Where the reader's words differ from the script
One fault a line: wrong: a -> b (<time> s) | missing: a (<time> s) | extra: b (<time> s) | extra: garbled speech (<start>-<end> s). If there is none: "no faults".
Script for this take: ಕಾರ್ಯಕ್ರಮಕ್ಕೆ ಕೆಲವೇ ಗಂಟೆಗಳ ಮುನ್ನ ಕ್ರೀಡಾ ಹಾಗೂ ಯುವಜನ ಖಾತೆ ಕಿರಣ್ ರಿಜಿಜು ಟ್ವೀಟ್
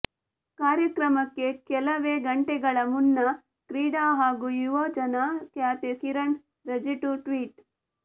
no faults